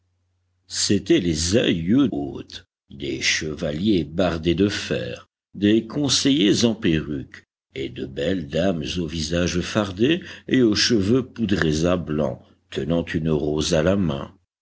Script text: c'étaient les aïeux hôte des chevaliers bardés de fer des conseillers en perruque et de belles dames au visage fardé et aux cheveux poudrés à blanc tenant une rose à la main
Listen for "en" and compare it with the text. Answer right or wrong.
right